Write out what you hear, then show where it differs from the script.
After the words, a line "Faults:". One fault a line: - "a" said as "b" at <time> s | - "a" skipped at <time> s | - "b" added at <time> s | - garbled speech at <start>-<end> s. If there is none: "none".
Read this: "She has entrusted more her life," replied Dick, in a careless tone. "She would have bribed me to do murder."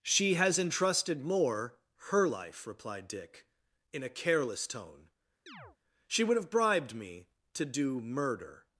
"She has entrusted more her life," replied Dick, in a careless tone. "She would have bribed me to do murder."
Faults:
none